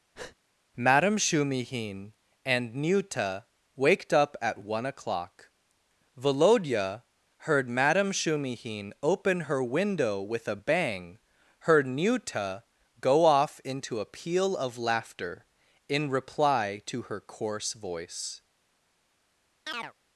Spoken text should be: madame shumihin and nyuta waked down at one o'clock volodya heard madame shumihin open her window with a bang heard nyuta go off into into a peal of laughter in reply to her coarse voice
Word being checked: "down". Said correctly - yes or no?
no